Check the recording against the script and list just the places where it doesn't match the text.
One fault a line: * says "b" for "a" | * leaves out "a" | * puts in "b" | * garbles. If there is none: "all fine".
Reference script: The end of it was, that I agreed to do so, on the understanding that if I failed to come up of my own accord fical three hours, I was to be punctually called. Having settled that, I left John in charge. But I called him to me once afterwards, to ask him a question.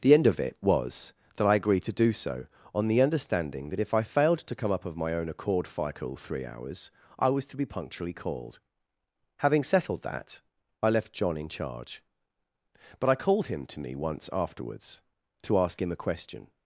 all fine